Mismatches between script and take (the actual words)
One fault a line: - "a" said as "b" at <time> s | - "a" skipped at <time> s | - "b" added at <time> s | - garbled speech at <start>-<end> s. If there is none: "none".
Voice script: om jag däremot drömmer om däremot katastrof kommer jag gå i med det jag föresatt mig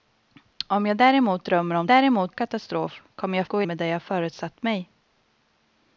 none